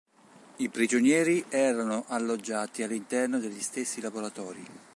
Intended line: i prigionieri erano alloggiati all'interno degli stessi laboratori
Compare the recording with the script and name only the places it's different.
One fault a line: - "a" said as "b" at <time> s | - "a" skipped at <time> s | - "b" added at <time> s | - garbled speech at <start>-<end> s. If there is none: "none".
none